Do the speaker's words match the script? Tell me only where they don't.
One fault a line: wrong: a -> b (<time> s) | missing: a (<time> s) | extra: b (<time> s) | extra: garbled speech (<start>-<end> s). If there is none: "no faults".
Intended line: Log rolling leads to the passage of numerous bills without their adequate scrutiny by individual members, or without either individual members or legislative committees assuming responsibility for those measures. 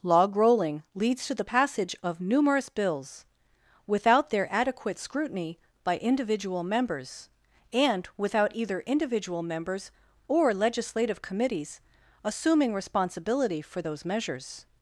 wrong: or -> and (7.7 s)